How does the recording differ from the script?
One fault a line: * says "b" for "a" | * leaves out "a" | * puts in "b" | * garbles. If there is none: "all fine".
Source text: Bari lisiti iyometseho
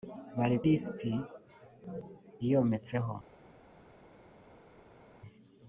all fine